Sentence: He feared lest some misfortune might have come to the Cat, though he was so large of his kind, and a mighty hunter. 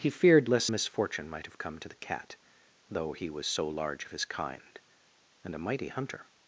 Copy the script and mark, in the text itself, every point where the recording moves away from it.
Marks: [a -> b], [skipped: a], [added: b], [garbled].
He feared lest [skipped: some] misfortune might have come to the Cat, though he was so large of his kind, and a mighty hunter.